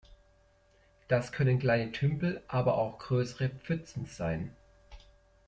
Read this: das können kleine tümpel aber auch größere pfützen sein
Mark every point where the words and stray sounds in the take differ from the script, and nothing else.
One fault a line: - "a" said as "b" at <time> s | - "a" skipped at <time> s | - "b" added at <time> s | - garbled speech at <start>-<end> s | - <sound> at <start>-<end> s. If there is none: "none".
none